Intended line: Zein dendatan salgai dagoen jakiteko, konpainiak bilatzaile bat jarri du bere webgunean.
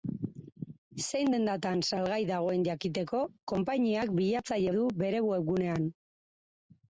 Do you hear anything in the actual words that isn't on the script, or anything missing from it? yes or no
yes